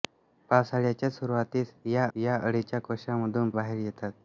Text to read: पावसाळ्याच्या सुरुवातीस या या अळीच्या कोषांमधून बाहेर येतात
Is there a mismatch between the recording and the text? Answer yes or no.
no